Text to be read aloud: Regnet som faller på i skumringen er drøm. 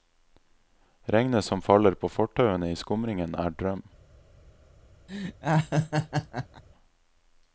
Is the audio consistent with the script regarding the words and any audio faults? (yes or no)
no